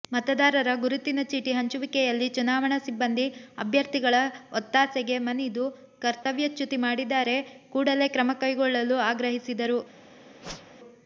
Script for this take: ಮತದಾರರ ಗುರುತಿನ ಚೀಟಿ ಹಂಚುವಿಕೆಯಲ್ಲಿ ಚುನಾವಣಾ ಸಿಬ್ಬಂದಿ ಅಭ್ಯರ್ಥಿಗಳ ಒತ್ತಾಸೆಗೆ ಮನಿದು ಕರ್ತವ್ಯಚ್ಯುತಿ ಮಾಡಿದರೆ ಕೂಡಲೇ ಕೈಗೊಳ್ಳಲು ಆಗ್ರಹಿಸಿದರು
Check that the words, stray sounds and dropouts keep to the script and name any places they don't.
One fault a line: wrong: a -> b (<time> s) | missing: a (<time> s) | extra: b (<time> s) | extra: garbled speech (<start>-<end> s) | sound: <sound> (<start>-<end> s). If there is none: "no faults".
sound: dropout (6.2-6.3 s)
extra: ಕ್ರಮ (8.1 s)
sound: whoosh (10.4-10.8 s)